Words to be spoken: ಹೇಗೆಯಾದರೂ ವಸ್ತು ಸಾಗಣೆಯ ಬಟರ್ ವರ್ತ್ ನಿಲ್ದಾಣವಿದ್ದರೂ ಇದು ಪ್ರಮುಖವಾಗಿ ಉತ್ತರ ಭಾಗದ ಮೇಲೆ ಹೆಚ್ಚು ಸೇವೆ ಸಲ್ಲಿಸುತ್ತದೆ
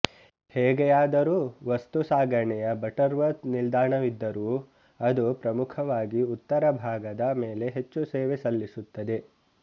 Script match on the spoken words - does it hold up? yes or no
no